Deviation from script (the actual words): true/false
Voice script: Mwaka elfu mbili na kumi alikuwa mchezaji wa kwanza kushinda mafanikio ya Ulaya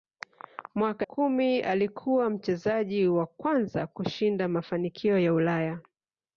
true